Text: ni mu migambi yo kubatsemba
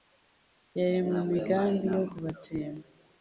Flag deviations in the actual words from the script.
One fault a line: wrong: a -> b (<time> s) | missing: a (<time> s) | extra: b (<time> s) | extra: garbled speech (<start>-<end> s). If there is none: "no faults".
wrong: ni -> yari (0.8 s)